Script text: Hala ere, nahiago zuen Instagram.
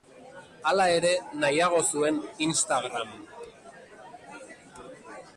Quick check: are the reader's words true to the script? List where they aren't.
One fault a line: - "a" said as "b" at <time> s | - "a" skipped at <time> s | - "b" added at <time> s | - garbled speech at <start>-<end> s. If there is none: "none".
none